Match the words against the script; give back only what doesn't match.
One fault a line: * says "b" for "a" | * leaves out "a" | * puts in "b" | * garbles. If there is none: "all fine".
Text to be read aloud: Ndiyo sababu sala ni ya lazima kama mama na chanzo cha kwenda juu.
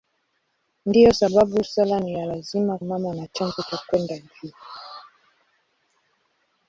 * leaves out "kama"